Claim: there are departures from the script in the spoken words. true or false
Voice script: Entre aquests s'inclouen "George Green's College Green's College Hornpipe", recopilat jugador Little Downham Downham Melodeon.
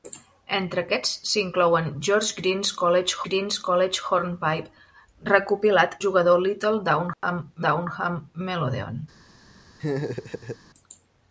false